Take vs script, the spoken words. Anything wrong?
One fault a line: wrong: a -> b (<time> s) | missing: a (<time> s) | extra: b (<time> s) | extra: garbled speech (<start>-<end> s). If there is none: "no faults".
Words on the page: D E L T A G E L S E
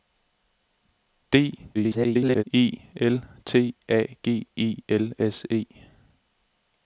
extra: garbled speech (1.7-2.4 s)